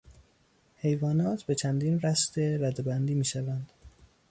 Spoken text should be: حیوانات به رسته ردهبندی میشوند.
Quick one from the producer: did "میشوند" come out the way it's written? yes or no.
yes